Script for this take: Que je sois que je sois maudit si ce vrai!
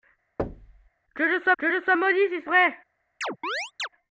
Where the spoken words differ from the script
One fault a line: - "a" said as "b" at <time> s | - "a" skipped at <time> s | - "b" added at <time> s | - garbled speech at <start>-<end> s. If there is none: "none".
none